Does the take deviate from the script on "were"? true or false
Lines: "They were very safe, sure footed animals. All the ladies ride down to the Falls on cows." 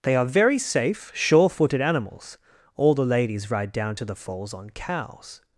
true